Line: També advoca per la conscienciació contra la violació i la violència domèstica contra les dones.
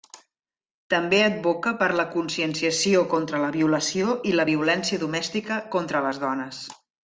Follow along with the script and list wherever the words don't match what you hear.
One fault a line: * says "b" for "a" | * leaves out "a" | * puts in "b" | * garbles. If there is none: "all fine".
all fine